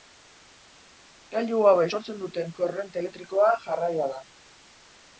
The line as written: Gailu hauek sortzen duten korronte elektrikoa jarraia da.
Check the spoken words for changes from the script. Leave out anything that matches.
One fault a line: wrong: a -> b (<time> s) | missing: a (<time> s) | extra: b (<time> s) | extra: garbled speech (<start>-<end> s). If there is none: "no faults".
no faults